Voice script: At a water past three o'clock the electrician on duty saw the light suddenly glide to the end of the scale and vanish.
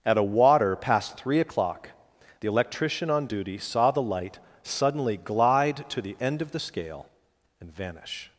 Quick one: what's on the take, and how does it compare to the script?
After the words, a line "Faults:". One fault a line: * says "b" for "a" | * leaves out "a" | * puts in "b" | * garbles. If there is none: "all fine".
At a water past three o'clock the electrician on duty saw the light suddenly glide to the end of the scale and vanish.
Faults:
all fine